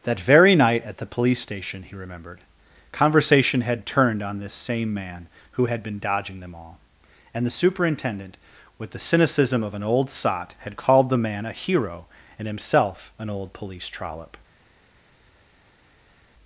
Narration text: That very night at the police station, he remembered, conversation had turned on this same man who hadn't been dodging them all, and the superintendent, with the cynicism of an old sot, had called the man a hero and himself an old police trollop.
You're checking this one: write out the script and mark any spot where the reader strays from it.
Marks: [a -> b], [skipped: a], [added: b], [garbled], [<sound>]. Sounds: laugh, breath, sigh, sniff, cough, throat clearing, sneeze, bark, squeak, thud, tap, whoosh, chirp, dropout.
That very night at the police station, he remembered, conversation had turned on this same man who [hadn't -> had] been dodging them all, and the superintendent, with the cynicism of an old sot, had called the man a hero and himself an old police trollop.